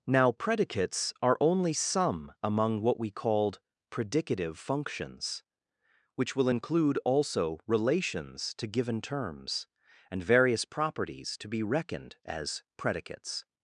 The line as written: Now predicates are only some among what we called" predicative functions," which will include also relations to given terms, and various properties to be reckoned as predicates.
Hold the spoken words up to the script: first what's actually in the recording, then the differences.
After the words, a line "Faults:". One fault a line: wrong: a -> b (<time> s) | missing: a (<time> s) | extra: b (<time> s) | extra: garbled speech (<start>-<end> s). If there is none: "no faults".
Now predicates are only some among what we called" predicative functions," which will include also relations to given terms, and various properties to be reckoned as predicates.
Faults:
no faults